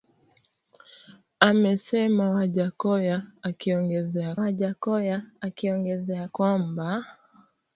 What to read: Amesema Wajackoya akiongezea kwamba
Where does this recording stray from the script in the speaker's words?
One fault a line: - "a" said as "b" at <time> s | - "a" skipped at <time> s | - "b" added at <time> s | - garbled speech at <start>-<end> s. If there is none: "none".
- "Wajackoya akiongezea" added at 4.4 s